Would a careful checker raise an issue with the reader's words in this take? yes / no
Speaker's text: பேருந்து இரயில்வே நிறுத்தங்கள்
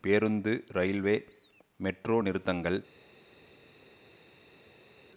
yes